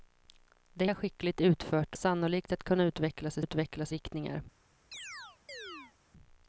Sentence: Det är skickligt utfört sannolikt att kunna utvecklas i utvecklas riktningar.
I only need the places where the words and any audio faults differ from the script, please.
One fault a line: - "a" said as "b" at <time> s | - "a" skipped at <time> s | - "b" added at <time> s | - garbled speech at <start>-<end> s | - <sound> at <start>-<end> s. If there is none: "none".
- chirp at 4.9-5.9 s